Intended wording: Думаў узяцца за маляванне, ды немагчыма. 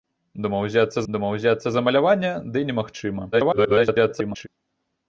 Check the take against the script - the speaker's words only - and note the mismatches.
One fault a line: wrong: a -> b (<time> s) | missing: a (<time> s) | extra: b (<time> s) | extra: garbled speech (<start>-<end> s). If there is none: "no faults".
extra: думаў узяцца (1.1 s)
extra: garbled speech (3.3-4.5 s)